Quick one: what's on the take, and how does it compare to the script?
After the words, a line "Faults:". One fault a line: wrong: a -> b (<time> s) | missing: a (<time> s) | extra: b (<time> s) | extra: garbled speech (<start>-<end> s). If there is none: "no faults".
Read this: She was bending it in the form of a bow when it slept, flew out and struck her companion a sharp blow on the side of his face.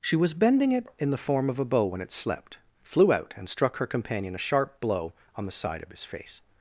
She was bending it in the form of a bow when it slept, flew out and struck her companion a sharp blow on the side of his face.
Faults:
no faults